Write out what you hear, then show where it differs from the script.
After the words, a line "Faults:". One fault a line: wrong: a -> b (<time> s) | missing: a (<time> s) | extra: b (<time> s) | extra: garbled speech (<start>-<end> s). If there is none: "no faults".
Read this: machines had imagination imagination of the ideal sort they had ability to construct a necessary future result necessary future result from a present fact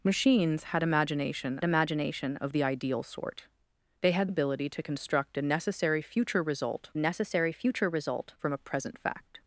machines had imagination imagination of the ideal sort they had ability to construct a necessary future result necessary future result from a present fact
Faults:
no faults